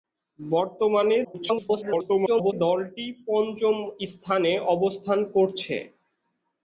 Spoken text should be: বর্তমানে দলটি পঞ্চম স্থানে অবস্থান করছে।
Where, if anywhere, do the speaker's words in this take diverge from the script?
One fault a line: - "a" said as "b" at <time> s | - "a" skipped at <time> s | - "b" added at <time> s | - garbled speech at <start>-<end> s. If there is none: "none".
- garbled speech at 1.2-2.5 s